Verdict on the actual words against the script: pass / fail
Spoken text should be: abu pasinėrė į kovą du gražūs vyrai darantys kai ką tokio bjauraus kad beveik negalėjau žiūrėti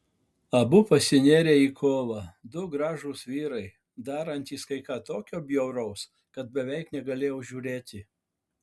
pass